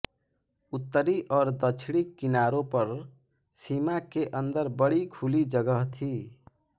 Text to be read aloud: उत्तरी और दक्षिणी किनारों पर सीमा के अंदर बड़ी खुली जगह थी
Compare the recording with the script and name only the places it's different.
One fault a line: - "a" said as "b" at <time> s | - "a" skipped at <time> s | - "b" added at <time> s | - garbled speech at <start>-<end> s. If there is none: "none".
none